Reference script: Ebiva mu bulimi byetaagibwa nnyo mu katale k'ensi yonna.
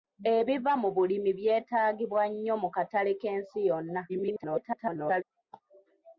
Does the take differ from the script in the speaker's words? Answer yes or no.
yes